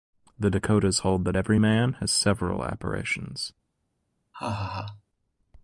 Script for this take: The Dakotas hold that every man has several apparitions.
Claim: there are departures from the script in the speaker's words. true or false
false